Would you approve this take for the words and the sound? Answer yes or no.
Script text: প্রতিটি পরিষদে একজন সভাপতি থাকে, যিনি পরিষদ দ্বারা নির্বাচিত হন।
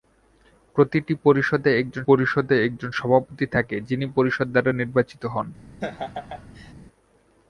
no